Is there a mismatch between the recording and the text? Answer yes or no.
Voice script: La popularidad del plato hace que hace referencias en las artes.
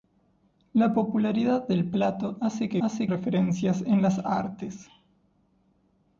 no